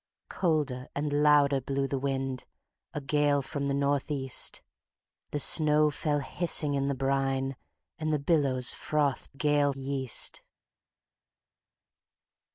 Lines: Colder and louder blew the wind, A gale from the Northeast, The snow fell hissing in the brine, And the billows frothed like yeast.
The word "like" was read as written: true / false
false